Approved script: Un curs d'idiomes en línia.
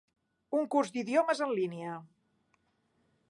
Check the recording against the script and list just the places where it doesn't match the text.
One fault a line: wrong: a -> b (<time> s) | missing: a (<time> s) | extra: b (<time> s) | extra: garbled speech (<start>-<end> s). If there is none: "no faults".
no faults